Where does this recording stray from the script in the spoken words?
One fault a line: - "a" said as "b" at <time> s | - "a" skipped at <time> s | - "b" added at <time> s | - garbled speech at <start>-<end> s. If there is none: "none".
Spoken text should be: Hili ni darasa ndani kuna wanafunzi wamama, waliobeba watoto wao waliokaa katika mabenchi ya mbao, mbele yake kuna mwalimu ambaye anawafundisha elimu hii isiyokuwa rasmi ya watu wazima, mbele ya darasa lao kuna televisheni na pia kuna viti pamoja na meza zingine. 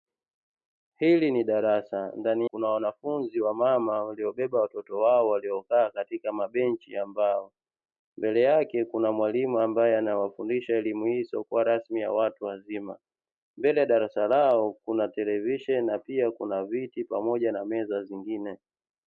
none